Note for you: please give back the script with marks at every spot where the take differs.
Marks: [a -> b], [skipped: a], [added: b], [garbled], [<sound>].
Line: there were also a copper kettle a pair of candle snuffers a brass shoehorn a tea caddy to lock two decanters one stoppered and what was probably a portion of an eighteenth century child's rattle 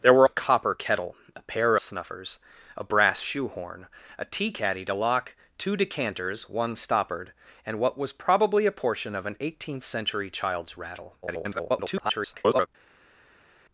there were [skipped: also] a copper kettle a pair [skipped: of candle] snuffers a brass shoehorn a tea caddy to lock two decanters one stoppered and what was probably a portion of an eighteenth century child's rattle [garbled]